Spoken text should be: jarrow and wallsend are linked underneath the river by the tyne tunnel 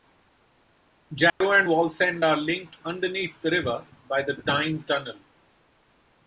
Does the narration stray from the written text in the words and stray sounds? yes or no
yes